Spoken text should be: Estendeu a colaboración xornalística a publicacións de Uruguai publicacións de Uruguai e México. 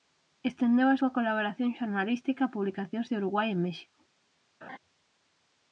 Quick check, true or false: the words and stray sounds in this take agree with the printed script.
false